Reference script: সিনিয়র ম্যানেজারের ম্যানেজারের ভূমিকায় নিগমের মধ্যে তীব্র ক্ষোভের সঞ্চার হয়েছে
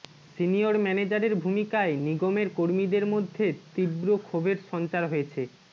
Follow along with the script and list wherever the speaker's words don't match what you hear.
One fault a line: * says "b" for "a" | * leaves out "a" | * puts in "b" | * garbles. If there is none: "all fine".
* leaves out "ম্যানেজারের"
* puts in "কর্মীদের"